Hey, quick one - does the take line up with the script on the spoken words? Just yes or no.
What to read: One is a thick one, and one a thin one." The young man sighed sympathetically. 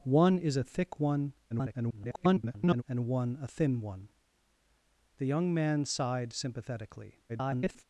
no